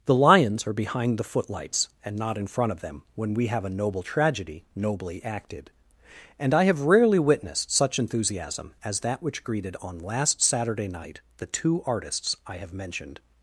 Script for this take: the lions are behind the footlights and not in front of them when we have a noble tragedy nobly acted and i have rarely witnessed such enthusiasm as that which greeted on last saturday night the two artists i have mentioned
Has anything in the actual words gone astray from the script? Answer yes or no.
no